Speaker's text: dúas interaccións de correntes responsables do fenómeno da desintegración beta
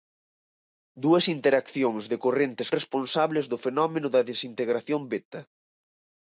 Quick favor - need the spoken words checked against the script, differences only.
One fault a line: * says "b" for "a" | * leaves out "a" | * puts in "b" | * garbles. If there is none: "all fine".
all fine